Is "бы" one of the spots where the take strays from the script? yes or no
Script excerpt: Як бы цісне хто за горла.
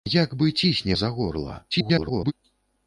no